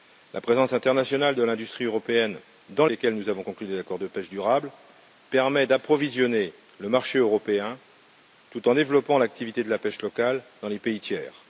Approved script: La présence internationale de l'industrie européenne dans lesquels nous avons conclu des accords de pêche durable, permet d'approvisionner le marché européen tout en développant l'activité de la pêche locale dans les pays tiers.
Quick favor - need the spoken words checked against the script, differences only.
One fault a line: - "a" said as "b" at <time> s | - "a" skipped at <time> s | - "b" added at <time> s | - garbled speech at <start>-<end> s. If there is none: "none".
none